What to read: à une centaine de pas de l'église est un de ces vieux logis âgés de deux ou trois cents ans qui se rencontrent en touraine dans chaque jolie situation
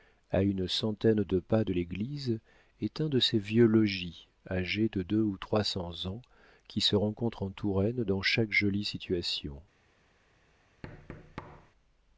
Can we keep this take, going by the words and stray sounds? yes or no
no